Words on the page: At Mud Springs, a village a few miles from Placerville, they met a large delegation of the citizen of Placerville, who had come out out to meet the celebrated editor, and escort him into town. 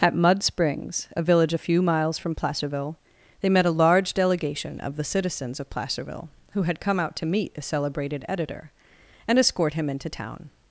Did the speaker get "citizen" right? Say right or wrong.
wrong